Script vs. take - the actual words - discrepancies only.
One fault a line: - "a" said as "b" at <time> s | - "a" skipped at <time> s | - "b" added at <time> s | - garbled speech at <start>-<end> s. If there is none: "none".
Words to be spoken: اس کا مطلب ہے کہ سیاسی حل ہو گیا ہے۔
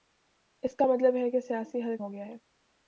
none